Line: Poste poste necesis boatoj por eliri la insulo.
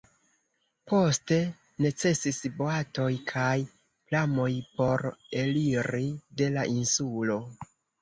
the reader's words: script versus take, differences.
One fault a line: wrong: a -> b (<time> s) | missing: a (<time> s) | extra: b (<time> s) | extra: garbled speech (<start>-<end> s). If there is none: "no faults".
missing: poste (1.4 s)
extra: kaj pramoj (3.4 s)
extra: de (6.4 s)